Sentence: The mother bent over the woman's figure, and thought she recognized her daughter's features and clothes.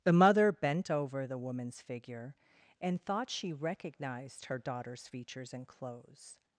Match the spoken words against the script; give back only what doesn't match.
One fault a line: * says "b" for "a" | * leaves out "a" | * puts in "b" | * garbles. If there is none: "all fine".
all fine